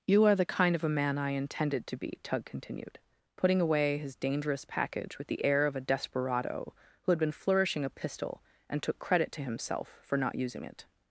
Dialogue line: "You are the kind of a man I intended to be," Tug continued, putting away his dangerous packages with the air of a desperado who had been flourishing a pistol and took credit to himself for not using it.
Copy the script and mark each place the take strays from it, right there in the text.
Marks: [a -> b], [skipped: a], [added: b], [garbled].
"You are the kind of a man I intended to be," Tug continued, putting away his dangerous [packages -> package] with the air of a desperado who had been flourishing a pistol and took credit to himself for not using it.